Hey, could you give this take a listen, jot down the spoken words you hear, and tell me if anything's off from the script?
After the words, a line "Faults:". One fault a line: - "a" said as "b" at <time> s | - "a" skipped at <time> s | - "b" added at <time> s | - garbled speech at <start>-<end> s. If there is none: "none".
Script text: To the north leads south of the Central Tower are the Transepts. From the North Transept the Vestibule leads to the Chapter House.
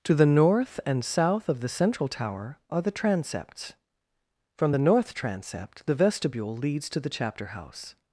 To the north and south of the Central Tower are the Transepts. From the North Transept the Vestibule leads to the Chapter House.
Faults:
- "leads" said as "and" at 0.8 s